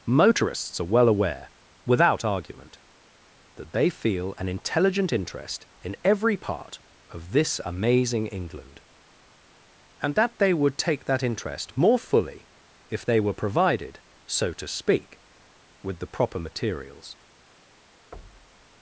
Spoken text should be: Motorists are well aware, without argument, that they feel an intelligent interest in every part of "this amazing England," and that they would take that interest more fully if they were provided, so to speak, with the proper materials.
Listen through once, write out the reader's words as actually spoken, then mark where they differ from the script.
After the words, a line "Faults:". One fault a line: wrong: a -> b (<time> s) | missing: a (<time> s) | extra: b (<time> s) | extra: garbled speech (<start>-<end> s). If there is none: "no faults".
Motorists are well aware, without argument, that they feel an intelligent interest in every part of "this amazing England," and that they would take that interest more fully if they were provided, so to speak, with the proper materials.
Faults:
no faults